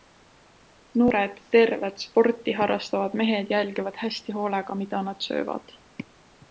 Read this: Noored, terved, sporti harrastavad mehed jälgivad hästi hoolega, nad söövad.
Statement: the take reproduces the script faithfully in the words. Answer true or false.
false